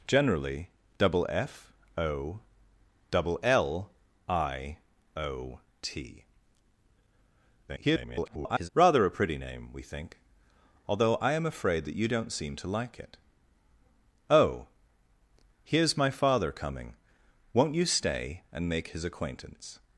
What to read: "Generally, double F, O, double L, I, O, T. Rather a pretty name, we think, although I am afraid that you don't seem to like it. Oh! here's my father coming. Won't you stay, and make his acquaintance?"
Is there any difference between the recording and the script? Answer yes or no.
yes